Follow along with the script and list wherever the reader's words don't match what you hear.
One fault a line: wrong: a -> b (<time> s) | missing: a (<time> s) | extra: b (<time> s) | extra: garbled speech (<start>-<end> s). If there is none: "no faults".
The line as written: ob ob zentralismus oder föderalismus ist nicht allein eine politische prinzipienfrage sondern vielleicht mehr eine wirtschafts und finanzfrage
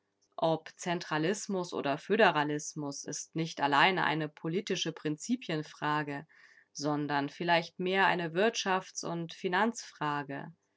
missing: ob (0.7 s)